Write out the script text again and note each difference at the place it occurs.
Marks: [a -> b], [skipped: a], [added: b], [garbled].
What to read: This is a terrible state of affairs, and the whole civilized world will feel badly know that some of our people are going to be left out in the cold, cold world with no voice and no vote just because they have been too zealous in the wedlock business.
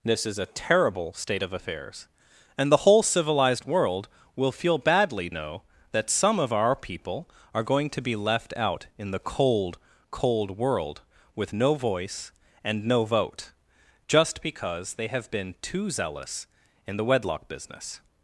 This is a terrible state of affairs, and the whole civilized world will feel badly know that some of our people are going to be left out in the cold, cold world with no voice and no vote just because they have been too zealous in the wedlock business.